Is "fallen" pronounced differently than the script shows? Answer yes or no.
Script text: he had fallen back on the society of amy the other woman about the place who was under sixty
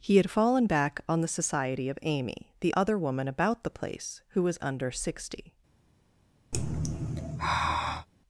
no